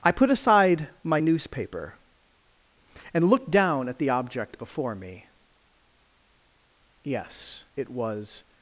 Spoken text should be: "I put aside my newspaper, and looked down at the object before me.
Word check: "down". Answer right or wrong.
right